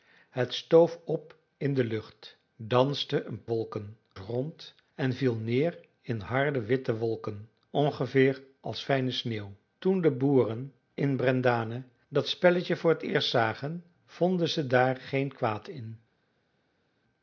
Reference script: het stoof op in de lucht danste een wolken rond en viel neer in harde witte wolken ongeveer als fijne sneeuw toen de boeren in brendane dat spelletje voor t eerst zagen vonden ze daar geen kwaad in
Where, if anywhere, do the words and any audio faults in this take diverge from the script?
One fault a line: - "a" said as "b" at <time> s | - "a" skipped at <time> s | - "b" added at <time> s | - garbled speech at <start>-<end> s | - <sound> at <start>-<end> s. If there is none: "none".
none